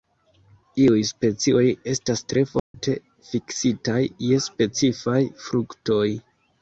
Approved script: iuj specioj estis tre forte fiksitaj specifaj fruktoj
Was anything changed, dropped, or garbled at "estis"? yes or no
yes